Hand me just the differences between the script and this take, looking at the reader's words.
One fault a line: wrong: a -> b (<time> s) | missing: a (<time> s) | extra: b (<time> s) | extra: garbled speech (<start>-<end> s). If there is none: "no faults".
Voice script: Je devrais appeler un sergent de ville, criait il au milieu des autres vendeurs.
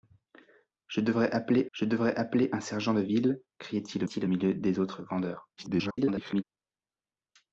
extra: je devrais appeler (1.7 s)
extra: il (4.0 s)
extra: garbled speech (5.6-6.4 s)